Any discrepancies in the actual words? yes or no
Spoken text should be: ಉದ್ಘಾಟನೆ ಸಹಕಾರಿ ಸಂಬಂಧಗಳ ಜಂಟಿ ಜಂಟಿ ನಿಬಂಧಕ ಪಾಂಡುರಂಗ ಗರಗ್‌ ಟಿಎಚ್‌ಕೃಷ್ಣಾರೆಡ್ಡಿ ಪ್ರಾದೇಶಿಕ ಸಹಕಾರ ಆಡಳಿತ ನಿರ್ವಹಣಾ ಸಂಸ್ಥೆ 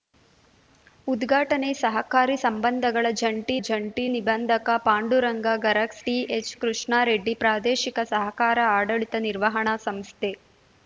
no